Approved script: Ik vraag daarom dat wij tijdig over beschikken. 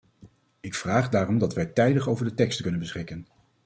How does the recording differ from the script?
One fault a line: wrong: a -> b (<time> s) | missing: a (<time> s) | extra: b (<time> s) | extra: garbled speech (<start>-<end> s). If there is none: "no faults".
extra: de teksten kunnen (2.2 s)